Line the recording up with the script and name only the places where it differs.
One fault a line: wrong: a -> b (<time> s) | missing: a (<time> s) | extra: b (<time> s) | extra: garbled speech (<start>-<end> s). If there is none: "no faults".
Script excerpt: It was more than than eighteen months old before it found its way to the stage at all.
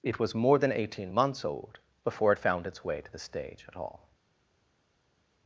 missing: than (0.7 s)